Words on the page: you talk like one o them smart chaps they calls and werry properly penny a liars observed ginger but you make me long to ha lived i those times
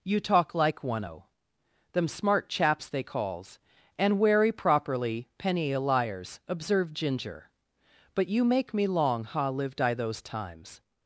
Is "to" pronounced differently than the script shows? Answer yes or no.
yes